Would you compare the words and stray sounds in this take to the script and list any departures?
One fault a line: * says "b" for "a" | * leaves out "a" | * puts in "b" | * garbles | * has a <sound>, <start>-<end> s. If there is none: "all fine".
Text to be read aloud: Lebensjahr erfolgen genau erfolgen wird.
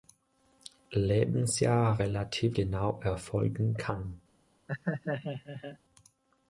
* says "relativ" for "erfolgen"
* says "kann" for "wird"
* has a laugh, 4.7-5.8 s